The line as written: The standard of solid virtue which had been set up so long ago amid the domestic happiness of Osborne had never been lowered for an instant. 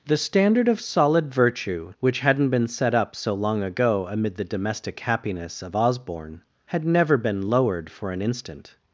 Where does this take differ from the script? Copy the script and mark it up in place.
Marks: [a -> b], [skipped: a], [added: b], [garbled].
The standard of solid virtue which [had -> hadn't] been set up so long ago amid the domestic happiness of Osborne had never been lowered for an instant.